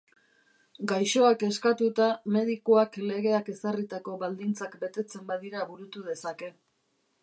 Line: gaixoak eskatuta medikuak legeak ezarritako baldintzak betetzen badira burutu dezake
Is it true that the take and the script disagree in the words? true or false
false